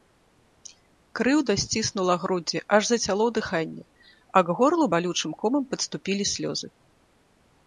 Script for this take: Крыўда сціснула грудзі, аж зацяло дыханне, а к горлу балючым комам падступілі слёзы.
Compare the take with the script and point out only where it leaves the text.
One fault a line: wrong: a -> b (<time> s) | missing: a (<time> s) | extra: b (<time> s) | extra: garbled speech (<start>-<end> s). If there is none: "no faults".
no faults